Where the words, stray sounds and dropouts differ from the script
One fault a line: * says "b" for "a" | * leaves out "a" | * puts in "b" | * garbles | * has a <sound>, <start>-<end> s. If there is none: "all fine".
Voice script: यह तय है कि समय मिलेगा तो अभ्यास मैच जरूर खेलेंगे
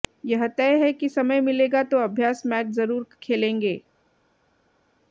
all fine